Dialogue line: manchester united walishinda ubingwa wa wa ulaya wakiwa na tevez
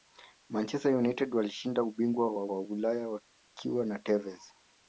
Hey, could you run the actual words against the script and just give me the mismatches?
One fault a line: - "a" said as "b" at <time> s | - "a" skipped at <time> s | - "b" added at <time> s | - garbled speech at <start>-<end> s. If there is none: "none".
none